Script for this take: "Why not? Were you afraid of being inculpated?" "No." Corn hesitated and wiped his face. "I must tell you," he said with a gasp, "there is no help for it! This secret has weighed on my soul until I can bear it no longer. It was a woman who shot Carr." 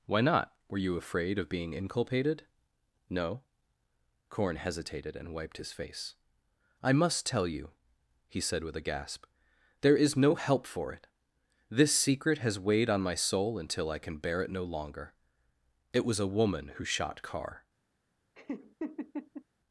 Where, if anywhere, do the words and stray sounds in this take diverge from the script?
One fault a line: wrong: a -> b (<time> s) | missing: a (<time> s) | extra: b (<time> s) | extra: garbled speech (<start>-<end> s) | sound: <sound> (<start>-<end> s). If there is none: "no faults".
sound: laugh (18.3-19.4 s)